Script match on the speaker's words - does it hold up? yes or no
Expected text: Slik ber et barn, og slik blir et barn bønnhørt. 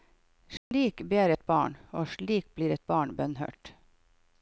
yes